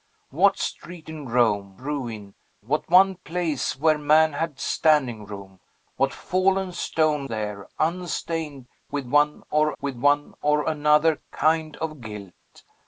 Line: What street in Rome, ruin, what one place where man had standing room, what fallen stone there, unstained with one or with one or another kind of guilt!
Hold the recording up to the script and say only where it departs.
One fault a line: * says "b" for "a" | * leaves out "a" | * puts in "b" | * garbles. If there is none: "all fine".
all fine